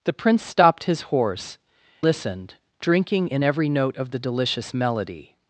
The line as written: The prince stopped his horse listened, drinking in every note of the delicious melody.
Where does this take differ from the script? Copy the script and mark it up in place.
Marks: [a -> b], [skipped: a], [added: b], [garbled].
The prince stopped his horse listened, drinking in every note of the delicious melody.